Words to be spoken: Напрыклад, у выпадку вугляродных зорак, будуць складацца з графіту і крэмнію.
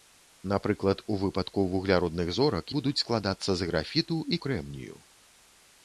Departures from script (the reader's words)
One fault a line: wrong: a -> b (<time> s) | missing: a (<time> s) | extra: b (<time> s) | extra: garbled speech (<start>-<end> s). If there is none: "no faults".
no faults